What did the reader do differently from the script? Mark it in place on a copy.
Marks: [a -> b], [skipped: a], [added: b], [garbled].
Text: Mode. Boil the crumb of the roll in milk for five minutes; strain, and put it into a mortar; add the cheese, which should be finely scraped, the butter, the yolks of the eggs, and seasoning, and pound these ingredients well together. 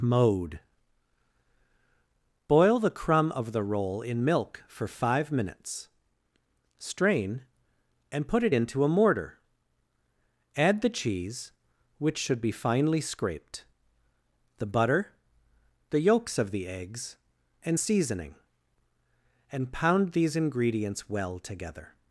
Mode. Boil the crumb of the roll in milk for five minutes; strain, and put it into a mortar; add the cheese, which should be finely scraped, the butter, the yolks of the eggs, and seasoning, and pound these ingredients well together.